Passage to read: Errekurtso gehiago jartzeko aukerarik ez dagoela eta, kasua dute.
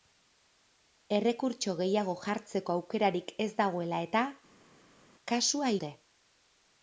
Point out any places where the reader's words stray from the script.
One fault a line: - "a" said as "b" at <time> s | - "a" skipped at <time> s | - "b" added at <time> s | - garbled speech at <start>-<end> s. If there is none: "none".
none